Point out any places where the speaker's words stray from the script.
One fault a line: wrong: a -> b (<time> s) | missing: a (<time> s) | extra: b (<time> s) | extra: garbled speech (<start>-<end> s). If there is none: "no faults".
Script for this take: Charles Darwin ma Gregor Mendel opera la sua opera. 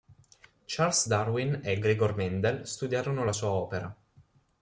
wrong: ma -> e (1.6 s)
wrong: opera -> studiarono (2.6 s)